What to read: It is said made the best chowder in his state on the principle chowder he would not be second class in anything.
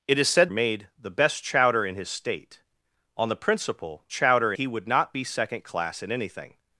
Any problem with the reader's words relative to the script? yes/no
no